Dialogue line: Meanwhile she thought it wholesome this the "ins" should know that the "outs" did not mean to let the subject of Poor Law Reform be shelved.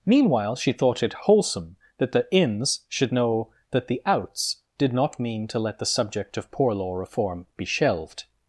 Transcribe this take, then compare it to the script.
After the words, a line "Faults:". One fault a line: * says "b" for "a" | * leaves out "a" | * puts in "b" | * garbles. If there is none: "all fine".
Meanwhile she thought it wholesome that the "ins" should know that the "outs" did not mean to let the subject of Poor Law Reform be shelved.
Faults:
* says "that" for "this"